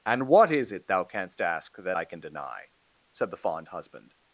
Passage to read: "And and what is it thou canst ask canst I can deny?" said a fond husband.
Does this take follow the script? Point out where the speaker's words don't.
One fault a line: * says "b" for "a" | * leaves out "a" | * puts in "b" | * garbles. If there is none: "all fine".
* leaves out "and"
* says "that" for "canst"
* says "the" for "a"